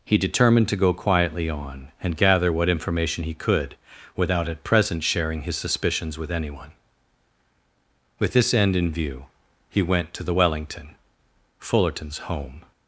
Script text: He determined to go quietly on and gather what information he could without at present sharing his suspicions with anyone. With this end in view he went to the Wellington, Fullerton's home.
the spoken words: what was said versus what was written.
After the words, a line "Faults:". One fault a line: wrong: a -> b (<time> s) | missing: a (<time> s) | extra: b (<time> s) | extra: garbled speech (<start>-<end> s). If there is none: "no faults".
He determined to go quietly on and gather what information he could without at present sharing his suspicions with anyone. With this end in view he went to the Wellington, Fullerton's home.
Faults:
no faults